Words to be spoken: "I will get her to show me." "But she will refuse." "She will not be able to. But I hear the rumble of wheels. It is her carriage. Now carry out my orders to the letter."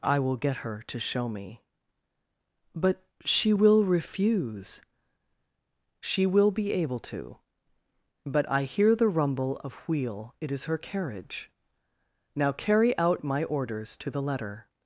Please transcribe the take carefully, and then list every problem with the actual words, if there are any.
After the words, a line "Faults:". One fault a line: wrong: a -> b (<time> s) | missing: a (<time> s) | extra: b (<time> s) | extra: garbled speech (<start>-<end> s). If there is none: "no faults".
"I will get her to show me." "But she will refuse." "She will be able to. But I hear the rumble of wheel. It is her carriage. Now carry out my orders to the letter."
Faults:
missing: not (6.5 s)
wrong: wheels -> wheel (9.9 s)